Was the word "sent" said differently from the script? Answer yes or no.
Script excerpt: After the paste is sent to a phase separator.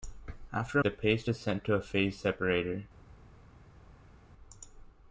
no